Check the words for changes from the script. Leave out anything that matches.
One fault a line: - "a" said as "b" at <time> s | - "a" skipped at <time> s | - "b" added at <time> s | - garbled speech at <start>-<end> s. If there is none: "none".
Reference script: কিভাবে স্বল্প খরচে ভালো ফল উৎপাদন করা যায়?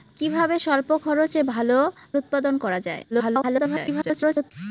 - "ফল" skipped at 1.8 s
- garbled speech at 3.1-4.5 s